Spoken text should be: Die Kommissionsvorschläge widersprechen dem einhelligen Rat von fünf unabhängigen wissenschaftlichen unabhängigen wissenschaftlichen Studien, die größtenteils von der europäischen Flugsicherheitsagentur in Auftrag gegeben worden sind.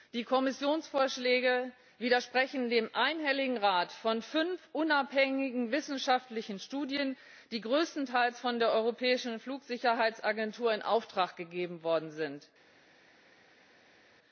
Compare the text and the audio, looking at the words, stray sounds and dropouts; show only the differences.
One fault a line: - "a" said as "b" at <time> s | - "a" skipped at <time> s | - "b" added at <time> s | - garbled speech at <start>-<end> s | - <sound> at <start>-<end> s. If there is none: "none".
- "unabhängigen wissenschaftlichen" skipped at 6.6 s